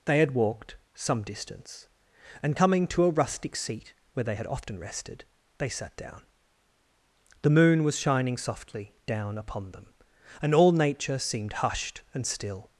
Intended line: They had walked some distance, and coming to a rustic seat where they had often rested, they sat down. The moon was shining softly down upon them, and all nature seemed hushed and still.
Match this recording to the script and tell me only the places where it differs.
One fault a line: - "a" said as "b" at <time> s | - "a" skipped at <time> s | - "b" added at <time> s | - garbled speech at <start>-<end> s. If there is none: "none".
none